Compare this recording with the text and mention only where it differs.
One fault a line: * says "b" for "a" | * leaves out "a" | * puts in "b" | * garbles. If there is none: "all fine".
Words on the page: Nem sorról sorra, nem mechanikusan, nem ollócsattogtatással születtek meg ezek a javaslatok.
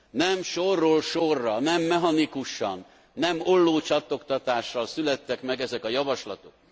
all fine